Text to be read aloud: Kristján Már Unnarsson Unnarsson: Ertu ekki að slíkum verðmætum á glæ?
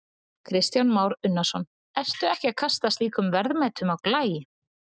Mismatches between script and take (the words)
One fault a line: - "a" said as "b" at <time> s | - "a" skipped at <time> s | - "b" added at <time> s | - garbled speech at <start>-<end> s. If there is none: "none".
- "Unnarsson" skipped at 1.7 s
- "kasta" added at 2.6 s